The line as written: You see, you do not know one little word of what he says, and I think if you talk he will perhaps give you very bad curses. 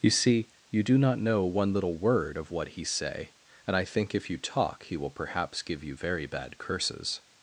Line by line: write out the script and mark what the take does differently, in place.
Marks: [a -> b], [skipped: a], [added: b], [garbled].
You see, you do not know one little word of what he [says, -> say] and I think if you talk he will perhaps give you very bad curses.